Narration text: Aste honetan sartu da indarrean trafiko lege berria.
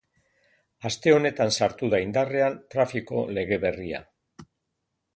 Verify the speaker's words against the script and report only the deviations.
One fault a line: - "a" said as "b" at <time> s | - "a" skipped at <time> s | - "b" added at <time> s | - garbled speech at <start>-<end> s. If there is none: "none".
none